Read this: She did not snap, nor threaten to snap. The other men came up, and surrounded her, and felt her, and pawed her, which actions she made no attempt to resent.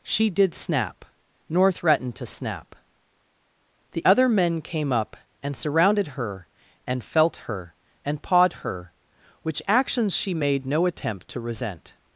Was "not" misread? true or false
true